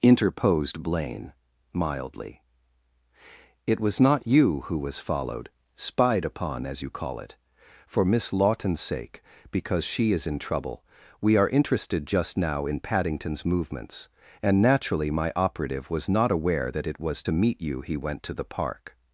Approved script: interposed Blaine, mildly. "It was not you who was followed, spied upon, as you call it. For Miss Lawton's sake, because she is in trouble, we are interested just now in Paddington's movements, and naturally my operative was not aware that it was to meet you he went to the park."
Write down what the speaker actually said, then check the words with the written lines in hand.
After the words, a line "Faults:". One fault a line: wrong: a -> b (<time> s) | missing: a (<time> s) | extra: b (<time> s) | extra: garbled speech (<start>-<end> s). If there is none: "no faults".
interposed Blaine, mildly. "It was not you who was followed, spied upon, as you call it. For Miss Lawton's sake, because she is in trouble, we are interested just now in Paddington's movements, and naturally my operative was not aware that it was to meet you he went to the park."
Faults:
no faults